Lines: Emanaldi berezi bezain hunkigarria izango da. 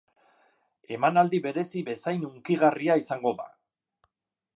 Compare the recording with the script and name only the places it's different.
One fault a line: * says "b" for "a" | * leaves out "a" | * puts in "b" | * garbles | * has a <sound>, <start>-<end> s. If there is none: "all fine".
all fine